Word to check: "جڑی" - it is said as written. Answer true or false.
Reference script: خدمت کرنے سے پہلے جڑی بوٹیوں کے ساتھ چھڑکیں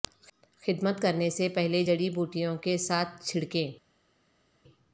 true